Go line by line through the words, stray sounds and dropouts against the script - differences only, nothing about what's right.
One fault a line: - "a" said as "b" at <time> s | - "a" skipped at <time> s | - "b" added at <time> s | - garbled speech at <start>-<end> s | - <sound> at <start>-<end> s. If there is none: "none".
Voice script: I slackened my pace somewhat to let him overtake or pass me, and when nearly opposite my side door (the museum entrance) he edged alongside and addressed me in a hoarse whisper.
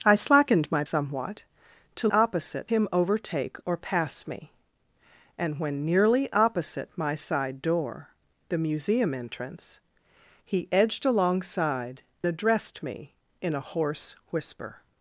- "pace" skipped at 0.8 s
- "let" said as "opposite" at 2.1 s
- "and" skipped at 12.0 s